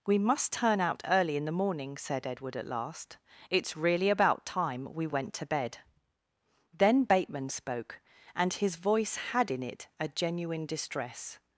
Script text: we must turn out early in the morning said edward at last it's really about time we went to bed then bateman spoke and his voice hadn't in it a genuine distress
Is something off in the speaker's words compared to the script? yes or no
yes